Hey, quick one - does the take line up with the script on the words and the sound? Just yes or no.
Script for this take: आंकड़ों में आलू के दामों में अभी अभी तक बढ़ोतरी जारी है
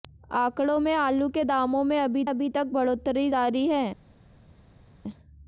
yes